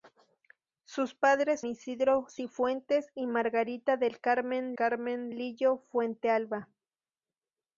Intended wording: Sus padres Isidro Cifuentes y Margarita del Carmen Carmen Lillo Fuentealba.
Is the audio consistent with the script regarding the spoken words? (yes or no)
yes